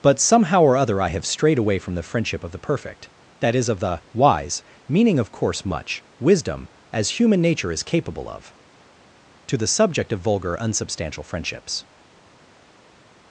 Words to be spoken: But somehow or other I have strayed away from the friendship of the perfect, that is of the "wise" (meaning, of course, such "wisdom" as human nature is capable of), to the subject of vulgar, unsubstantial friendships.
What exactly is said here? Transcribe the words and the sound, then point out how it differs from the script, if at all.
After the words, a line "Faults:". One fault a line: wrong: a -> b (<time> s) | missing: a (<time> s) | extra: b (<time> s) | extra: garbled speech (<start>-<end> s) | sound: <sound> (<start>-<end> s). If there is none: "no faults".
But somehow or other I have strayed away from the friendship of the perfect, that is of the "wise" (meaning, of course, much "wisdom" as human nature is capable of), to the subject of vulgar, unsubstantial friendships.
Faults:
wrong: such -> much (5.6 s)